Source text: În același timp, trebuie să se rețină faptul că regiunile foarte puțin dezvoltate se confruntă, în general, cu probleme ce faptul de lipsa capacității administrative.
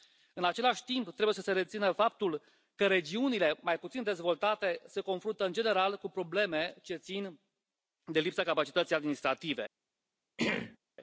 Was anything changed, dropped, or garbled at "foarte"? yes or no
yes